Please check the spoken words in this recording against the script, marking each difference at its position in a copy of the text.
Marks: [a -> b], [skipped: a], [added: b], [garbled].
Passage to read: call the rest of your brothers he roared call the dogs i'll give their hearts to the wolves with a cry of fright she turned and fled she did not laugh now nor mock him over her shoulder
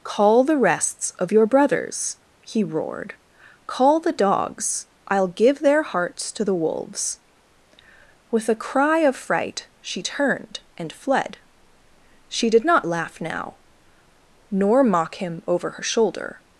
call the [rest -> rests] of your brothers he roared call the dogs i'll give their hearts to the wolves with a cry of fright she turned and fled she did not laugh now nor mock him over her shoulder